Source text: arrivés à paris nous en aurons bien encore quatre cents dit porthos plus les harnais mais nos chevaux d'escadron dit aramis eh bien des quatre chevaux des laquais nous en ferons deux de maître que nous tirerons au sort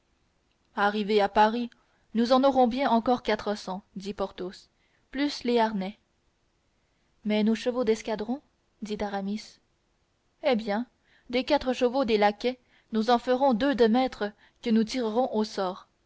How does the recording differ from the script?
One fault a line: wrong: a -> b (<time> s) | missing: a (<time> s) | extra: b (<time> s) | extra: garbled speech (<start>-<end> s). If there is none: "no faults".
no faults